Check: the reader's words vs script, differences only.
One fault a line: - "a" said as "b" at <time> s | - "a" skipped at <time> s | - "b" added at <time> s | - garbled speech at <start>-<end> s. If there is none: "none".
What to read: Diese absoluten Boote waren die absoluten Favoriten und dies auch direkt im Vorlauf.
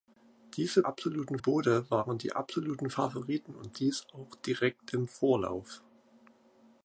none